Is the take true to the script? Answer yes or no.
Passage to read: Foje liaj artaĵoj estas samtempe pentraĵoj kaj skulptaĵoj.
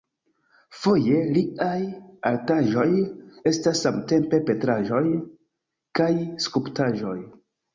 yes